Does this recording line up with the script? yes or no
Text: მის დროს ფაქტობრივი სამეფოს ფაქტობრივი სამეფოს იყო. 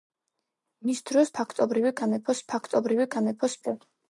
yes